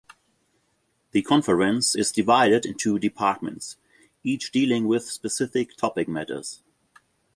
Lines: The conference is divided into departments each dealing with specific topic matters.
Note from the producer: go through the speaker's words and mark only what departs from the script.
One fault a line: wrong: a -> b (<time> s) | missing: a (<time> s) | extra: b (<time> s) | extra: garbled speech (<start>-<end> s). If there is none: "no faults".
no faults